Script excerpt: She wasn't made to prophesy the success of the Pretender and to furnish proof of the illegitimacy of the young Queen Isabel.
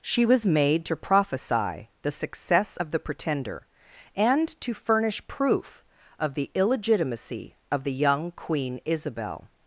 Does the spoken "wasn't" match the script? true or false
false